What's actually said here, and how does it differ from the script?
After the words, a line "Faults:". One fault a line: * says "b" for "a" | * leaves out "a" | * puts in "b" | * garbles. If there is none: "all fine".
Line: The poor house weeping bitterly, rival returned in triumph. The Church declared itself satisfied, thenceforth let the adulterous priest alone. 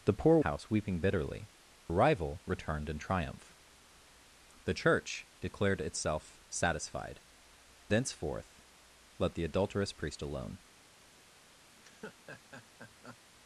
The poor house weeping bitterly, rival returned in triumph. The Church declared itself satisfied, thenceforth let the adulterous priest alone.
Faults:
all fine